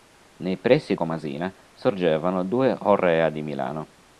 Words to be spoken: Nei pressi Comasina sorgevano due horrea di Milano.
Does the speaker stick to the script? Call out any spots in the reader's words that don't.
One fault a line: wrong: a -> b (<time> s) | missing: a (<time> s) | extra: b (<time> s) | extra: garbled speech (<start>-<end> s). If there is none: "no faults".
no faults